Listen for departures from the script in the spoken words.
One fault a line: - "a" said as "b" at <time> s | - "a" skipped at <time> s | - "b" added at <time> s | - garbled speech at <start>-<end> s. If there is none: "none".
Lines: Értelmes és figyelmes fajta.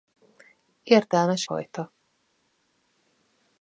- "és figyelmes" skipped at 1.5 s